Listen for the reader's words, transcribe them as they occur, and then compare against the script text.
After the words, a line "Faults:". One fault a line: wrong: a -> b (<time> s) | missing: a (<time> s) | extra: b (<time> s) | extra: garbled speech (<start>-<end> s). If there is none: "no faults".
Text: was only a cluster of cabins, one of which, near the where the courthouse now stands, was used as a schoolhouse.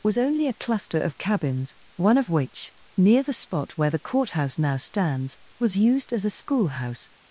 was only a cluster of cabins, one of which, near the spot where the courthouse now stands, was used as a schoolhouse.
Faults:
extra: spot (3.3 s)